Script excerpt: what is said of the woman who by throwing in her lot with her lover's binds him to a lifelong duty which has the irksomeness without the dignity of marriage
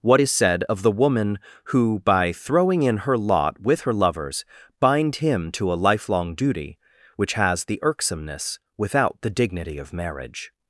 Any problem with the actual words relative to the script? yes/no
yes